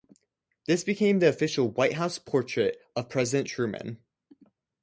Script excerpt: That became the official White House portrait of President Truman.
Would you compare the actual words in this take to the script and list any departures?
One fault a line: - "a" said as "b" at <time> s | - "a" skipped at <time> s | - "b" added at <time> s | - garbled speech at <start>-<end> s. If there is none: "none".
- "That" said as "This" at 0.7 s